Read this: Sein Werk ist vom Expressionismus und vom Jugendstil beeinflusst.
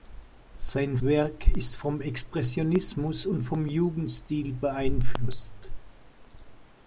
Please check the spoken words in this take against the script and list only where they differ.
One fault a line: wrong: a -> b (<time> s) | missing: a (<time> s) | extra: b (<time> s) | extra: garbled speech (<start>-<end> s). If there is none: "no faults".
no faults